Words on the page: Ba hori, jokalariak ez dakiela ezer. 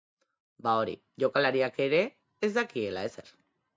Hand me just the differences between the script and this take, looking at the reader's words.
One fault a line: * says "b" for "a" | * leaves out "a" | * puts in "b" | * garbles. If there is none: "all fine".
* puts in "ere"